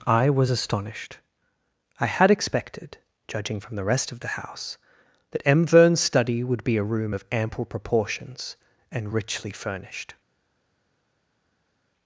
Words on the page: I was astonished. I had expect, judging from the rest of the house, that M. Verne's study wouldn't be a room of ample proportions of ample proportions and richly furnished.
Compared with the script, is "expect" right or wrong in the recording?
wrong